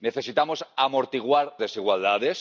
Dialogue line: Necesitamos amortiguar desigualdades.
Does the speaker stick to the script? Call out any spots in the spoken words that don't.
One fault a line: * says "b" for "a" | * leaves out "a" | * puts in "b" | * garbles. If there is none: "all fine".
all fine